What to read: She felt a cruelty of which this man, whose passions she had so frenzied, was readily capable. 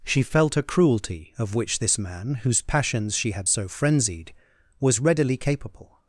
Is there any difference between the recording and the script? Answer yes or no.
no